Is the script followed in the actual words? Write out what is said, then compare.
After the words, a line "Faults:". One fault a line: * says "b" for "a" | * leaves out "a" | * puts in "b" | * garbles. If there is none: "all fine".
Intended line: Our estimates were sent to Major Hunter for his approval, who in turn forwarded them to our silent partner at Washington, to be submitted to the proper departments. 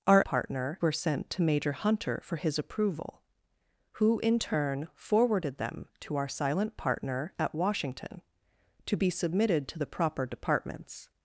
Our partner were sent to Major Hunter for his approval, who in turn forwarded them to our silent partner at Washington, to be submitted to the proper departments.
Faults:
* says "partner" for "estimates"